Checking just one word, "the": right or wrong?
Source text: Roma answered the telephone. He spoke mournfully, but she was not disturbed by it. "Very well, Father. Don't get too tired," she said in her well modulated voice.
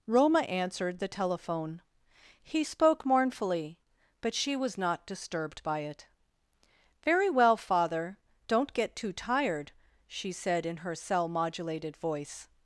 right